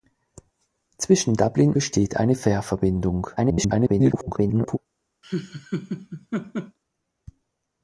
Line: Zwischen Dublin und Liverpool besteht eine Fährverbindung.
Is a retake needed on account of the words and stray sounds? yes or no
yes